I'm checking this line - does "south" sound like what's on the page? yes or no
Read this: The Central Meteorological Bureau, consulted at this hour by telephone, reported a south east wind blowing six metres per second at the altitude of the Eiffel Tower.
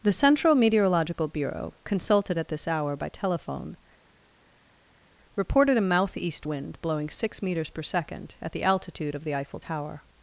no